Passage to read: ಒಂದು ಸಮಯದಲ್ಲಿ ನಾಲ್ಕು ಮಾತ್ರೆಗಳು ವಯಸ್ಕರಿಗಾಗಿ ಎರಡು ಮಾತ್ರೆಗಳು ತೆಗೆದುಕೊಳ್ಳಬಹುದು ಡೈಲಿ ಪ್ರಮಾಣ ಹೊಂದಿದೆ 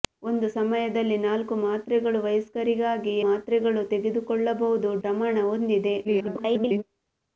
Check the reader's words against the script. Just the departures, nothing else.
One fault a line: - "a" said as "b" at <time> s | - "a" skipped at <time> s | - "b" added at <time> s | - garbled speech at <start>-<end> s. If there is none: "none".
- "ಎರಡು" skipped at 3.1 s
- "ಡೈಲಿ" skipped at 4.9 s
- garbled speech at 6.0-6.8 s